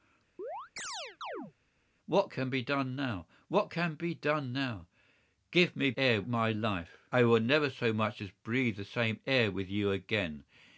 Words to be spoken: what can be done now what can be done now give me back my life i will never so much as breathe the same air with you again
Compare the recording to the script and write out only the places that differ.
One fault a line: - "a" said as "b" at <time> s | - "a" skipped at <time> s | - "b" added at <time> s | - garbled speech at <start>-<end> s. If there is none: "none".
- "back" said as "air" at 6.0 s